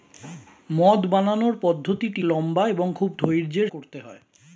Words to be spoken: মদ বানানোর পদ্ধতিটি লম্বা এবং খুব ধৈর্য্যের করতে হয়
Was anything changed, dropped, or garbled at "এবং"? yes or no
no